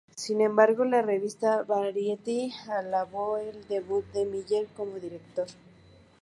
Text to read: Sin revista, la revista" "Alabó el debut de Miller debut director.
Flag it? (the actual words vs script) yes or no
yes